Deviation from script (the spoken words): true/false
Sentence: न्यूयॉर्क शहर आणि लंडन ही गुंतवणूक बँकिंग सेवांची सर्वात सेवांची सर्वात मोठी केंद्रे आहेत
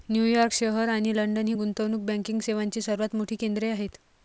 true